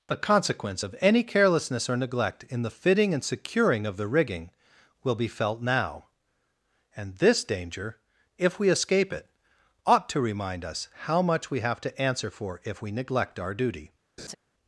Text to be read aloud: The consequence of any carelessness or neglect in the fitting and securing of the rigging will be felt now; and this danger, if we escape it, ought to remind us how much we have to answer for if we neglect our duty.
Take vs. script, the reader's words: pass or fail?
pass